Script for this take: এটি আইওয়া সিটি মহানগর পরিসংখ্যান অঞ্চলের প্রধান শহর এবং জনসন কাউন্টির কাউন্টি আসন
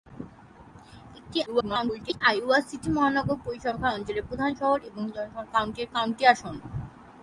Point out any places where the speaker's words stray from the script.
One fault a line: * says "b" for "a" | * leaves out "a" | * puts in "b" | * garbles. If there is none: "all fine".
* garbles